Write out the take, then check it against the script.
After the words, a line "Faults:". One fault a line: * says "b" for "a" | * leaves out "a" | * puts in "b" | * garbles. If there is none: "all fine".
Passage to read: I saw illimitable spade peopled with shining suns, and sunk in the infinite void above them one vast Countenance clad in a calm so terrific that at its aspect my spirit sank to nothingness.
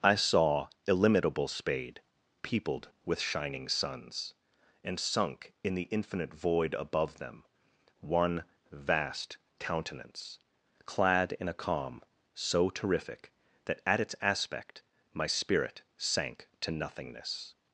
I saw illimitable spade peopled with shining suns, and sunk in the infinite void above them one vast Countenance clad in a calm so terrific that at its aspect my spirit sank to nothingness.
Faults:
all fine